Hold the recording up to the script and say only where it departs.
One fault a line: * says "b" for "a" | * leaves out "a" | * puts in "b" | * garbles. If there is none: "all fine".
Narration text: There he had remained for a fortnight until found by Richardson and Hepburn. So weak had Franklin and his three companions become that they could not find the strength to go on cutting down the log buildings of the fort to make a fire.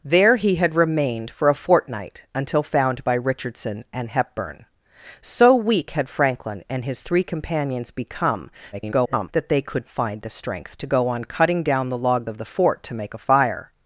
* garbles
* leaves out "not"
* leaves out "buildings"